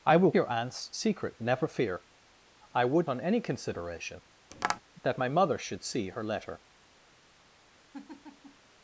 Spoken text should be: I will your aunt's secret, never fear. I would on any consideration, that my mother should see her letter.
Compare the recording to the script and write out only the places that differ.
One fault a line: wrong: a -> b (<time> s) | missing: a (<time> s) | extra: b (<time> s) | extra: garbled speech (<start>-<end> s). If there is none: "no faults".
no faults